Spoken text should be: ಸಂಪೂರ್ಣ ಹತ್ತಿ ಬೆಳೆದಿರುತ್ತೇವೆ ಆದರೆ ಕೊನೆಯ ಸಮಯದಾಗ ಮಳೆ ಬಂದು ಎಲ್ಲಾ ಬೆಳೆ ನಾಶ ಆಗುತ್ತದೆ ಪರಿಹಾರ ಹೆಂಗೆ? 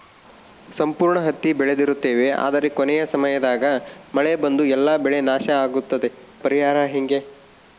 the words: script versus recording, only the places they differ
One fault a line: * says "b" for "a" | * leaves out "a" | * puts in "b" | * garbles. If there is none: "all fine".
all fine